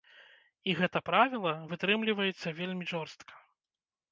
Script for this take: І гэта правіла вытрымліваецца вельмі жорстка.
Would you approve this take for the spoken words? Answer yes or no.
yes